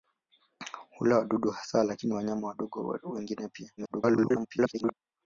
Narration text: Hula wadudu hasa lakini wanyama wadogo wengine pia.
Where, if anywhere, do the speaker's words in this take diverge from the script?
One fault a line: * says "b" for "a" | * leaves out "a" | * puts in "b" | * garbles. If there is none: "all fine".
* garbles